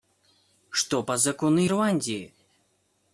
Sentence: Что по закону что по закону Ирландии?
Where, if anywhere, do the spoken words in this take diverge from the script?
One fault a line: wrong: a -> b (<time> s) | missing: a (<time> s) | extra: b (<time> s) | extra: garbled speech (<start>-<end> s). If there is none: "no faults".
missing: что по закону (1.7 s)